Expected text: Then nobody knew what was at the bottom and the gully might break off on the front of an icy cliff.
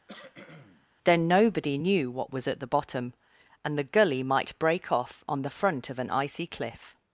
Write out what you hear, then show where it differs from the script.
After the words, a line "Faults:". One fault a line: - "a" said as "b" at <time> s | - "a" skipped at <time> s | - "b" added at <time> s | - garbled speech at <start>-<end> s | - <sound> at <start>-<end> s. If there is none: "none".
Then nobody knew what was at the bottom and the gully might break off on the front of an icy cliff.
Faults:
- cough at 0.1-0.9 s